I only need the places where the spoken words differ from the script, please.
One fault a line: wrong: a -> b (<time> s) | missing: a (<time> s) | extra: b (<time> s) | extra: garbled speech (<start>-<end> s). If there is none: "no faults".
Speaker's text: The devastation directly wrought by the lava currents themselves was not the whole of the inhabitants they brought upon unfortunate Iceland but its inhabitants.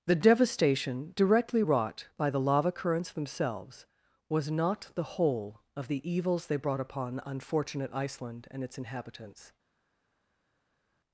wrong: inhabitants -> evils (6.1 s)
wrong: but -> and (8.5 s)